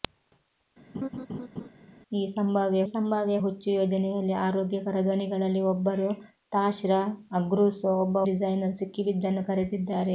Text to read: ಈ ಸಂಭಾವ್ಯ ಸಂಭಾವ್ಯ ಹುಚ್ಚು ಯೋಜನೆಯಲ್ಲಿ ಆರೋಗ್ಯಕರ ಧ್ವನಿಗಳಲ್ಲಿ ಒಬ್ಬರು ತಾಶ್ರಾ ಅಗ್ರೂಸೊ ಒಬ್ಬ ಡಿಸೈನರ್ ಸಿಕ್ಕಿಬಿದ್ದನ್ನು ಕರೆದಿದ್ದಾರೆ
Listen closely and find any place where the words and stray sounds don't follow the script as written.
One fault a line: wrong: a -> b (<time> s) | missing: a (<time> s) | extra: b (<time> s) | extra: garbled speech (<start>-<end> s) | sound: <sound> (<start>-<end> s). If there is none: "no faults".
sound: laugh (0.9-1.7 s)